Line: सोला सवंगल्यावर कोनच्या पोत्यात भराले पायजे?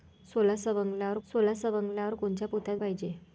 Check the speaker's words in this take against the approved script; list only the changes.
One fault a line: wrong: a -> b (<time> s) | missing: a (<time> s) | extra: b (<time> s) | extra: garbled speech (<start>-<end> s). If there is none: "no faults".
extra: सोला सवंगल्यावर (1.3 s)
missing: भराले (2.8 s)